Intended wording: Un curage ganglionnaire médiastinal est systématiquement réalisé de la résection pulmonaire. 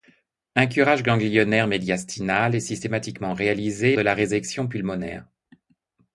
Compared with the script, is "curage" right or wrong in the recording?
right